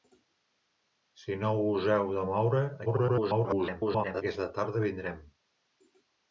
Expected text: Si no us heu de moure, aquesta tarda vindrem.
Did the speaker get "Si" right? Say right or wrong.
right